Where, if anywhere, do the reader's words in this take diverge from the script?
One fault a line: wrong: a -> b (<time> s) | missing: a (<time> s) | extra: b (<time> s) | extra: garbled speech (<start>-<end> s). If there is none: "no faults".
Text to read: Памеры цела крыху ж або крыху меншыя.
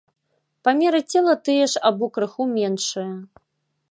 wrong: крыху -> тыя (1.5 s)